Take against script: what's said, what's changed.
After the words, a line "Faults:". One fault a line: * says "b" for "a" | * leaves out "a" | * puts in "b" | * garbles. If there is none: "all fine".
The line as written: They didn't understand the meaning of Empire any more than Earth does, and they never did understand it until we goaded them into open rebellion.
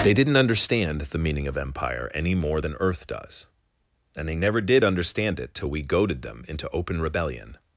They didn't understand the meaning of Empire any more than Earth does, and they never did understand it till we goaded them into open rebellion.
Faults:
* says "till" for "until"